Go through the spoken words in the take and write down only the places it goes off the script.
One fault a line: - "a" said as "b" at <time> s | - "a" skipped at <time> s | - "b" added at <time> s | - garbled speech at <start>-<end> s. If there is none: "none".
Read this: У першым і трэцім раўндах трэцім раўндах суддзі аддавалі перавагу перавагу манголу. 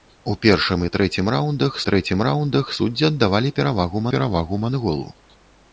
none